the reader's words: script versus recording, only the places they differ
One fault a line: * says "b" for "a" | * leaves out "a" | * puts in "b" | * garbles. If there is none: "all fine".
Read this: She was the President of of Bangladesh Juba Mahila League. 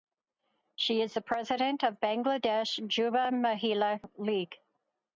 * says "is" for "was"
* leaves out "of"